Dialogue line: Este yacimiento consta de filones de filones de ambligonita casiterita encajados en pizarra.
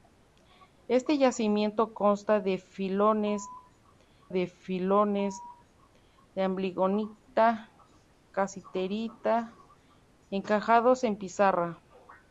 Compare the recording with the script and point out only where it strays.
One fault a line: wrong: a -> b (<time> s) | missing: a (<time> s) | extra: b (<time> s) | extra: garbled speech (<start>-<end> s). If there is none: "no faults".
no faults